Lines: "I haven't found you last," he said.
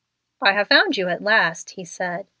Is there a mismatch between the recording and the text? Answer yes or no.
yes